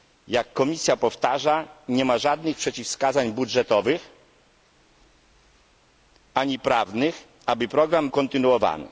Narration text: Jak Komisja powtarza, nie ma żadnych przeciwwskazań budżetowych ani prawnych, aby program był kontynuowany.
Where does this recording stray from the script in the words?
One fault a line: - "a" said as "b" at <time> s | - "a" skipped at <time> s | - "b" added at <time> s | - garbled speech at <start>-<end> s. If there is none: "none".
- "był" skipped at 8.1 s